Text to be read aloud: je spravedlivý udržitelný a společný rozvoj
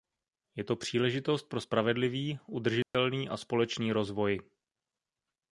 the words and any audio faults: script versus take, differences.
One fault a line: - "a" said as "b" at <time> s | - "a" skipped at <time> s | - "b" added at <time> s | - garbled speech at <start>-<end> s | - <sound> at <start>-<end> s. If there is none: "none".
- "to příležitost pro" added at 0.6 s
- dropout at 2.8-2.9 s